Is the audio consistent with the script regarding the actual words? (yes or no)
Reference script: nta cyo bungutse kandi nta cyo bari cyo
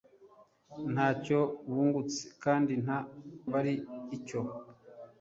no